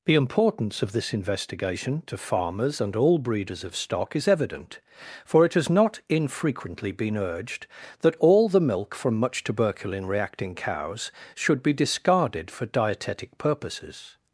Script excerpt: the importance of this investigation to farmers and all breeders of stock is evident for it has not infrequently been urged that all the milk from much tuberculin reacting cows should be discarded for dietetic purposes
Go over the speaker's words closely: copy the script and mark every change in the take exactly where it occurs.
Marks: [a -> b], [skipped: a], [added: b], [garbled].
the importance of this investigation to farmers and all breeders of stock is evident for it has not infrequently been urged that all the milk from much tuberculin reacting cows should be discarded for dietetic purposes